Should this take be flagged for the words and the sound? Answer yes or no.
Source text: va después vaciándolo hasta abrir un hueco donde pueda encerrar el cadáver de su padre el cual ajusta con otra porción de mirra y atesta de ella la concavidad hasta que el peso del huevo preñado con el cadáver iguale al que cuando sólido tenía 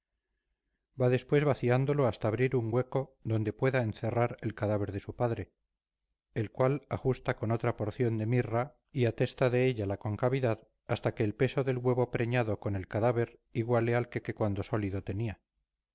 yes